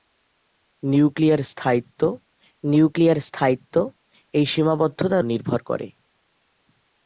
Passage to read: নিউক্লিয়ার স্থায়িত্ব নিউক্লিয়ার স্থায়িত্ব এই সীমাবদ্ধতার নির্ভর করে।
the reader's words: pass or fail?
pass